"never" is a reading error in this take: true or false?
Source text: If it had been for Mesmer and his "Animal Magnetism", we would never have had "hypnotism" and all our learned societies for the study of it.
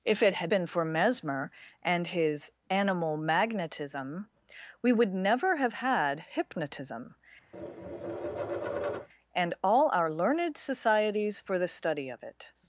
false